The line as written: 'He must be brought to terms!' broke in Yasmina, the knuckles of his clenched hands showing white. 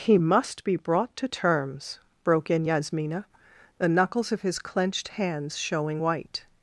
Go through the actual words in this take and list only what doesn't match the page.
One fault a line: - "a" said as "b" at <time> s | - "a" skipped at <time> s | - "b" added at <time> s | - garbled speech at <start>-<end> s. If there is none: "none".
none